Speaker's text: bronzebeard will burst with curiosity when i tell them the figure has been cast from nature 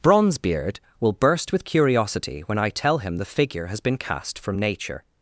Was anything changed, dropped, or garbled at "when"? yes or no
no